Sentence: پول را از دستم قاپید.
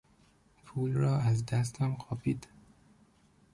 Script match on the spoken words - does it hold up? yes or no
yes